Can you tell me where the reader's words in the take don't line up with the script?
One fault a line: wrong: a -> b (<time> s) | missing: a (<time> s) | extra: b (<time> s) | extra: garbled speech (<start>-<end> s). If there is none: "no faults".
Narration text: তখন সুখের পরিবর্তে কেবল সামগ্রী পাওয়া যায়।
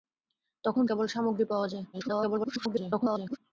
missing: সুখের পরিবর্তে (0.8 s)
extra: garbled speech (1.9-3.4 s)